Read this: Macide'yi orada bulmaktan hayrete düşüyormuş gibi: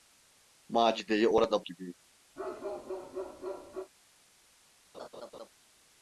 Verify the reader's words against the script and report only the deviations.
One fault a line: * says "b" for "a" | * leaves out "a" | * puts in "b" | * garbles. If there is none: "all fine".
* leaves out "bulmaktan hayrete düşüyormuş"